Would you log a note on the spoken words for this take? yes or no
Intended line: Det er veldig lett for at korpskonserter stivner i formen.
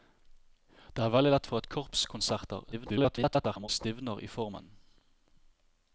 yes